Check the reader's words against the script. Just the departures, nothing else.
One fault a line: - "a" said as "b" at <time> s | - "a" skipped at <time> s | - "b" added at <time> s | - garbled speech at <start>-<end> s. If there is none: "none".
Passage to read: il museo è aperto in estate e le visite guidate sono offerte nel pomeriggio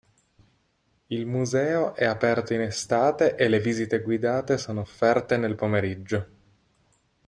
none